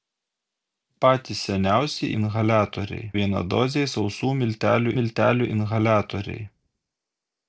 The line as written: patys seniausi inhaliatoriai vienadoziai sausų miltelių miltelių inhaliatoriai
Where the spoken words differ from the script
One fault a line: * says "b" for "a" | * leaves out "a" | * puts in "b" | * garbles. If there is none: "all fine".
all fine